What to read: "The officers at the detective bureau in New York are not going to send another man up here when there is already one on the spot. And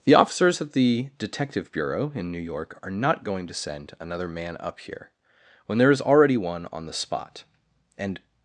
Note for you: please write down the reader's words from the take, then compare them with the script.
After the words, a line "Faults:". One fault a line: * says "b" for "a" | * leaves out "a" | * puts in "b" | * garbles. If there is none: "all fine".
"The officers at the detective bureau in New York are not going to send another man up here when there is already one on the spot. And
Faults:
all fine